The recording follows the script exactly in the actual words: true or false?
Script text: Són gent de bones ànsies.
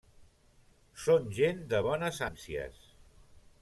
true